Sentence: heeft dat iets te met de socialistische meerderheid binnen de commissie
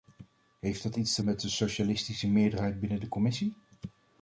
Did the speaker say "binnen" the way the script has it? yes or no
yes